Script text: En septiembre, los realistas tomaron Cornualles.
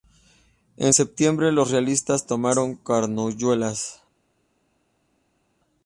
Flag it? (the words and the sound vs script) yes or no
no